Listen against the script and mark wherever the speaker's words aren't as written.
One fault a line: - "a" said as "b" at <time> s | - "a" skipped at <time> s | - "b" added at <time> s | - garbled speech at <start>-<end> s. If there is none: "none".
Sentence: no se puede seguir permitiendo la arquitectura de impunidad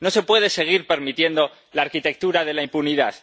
- "la" added at 2.5 s